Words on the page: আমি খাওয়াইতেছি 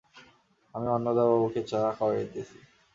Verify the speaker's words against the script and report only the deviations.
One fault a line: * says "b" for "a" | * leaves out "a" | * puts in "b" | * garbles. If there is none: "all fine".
* puts in "অন্নদাবাবুকে চা"